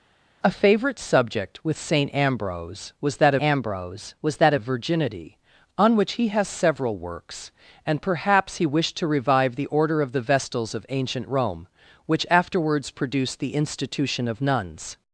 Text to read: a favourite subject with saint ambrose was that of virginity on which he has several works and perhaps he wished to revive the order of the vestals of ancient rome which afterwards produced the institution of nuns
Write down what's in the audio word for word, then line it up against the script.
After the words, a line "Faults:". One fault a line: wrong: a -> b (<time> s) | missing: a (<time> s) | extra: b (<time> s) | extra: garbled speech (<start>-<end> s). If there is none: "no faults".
a favourite subject with saint ambrose was that ambrose was that of virginity on which he has several works and perhaps he wished to revive the order of the vestals of ancient rome which afterwards produced the institution of nuns
Faults:
extra: ambrose was that (3.4 s)